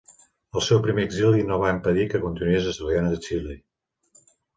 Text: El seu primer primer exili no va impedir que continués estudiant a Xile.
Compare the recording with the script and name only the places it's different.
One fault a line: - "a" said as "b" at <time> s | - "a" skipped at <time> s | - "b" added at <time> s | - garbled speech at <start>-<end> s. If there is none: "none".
- "primer" skipped at 1.0 s